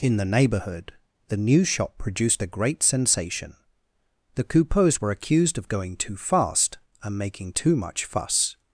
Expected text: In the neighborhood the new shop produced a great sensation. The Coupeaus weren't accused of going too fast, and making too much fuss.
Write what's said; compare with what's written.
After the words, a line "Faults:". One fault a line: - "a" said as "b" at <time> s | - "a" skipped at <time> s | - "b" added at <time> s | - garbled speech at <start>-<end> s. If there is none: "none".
In the neighborhood the new shop produced a great sensation. The Coupeaus were accused of going too fast, and making too much fuss.
Faults:
- "weren't" said as "were" at 5.0 s